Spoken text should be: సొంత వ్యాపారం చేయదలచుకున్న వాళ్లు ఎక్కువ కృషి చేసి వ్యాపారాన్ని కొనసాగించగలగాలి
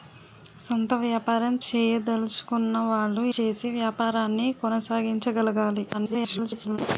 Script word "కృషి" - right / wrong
wrong